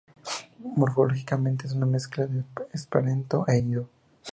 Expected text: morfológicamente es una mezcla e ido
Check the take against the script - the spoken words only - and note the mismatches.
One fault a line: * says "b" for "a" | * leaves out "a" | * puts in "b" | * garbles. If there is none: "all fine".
* puts in "de esperanto"